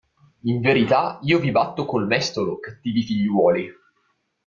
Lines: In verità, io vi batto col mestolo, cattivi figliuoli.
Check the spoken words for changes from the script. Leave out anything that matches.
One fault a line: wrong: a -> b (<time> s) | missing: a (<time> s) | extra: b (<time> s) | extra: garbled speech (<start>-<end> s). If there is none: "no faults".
no faults